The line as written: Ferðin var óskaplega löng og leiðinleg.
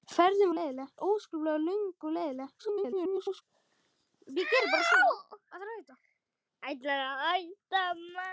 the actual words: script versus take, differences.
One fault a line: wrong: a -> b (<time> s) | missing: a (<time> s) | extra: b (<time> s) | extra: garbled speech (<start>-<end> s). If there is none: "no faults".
wrong: var -> leiðinleg (0.5 s)
extra: garbled speech (2.6-3.4 s)